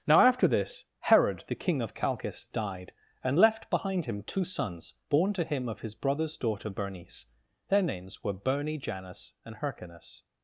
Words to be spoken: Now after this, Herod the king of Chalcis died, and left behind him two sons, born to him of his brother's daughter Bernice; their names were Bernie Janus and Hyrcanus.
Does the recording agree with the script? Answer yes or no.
yes